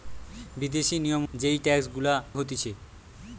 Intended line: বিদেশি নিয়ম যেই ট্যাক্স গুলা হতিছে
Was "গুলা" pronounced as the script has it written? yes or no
yes